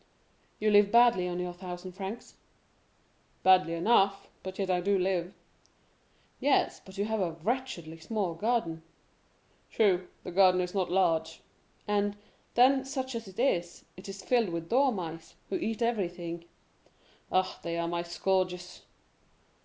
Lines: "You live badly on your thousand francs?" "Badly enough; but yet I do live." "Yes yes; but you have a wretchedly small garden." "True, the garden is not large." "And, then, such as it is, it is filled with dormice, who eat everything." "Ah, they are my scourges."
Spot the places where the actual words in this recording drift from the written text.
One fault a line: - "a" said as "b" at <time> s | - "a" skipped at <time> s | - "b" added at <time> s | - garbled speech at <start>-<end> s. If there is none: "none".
- "yes" skipped at 6.8 s